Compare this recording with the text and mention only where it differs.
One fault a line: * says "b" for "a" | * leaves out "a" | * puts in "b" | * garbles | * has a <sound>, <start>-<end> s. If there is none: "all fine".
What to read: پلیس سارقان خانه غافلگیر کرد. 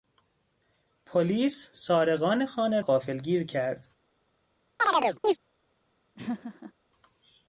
* has a chirp, 4.8-5.4 s
* has a laugh, 6.2-6.7 s